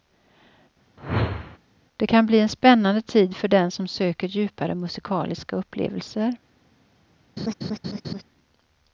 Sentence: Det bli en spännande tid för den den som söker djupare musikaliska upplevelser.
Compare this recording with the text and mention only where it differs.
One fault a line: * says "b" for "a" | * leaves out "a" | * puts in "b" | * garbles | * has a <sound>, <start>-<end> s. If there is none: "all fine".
* has a whoosh, 1.0-1.6 s
* puts in "kan"
* leaves out "den"
* has a laugh, 7.4-8.2 s